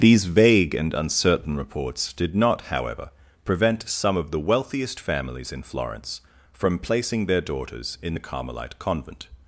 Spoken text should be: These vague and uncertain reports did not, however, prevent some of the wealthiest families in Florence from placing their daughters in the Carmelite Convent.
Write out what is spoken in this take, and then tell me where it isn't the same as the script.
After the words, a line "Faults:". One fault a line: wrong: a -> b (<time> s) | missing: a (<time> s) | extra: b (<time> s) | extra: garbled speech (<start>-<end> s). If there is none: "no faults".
These vague and uncertain reports did not, however, prevent some of the wealthiest families in Florence from placing their daughters in the Carmelite Convent.
Faults:
no faults